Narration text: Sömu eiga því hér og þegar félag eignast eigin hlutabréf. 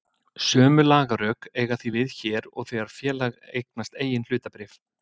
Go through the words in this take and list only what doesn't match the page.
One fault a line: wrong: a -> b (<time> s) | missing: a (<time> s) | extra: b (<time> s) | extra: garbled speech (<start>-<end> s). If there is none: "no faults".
extra: lagarök (0.9 s)
extra: við (2.0 s)